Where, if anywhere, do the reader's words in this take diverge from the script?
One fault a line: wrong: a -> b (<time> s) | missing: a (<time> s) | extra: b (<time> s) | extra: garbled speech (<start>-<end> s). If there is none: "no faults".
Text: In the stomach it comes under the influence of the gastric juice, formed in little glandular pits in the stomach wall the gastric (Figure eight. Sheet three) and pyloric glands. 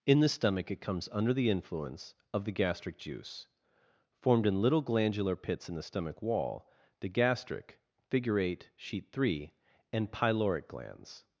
no faults